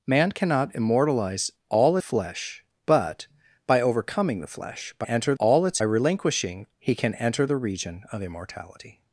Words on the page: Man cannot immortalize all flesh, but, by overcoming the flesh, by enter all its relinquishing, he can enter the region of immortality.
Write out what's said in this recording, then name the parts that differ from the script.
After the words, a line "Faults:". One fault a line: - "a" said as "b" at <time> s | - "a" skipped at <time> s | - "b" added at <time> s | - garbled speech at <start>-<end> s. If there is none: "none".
Man cannot immortalize all flesh, but, by overcoming the flesh, by enter all its relinquishing, he can enter the region of immortality.
Faults:
none